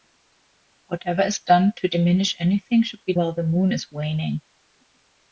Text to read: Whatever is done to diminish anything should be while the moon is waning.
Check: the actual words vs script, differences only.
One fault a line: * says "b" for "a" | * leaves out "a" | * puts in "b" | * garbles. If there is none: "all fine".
all fine